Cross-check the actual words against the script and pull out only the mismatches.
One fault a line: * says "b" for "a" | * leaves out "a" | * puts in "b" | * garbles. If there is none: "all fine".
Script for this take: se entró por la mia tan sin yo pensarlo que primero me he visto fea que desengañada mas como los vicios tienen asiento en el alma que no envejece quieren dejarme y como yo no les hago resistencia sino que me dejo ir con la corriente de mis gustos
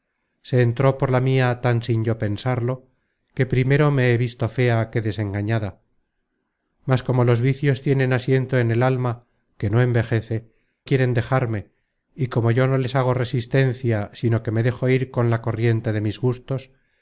all fine